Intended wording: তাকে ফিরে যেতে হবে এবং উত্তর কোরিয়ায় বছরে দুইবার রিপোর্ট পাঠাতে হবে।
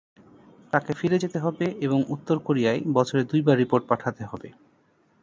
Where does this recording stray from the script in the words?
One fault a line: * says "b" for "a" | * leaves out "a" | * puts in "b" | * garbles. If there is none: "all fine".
all fine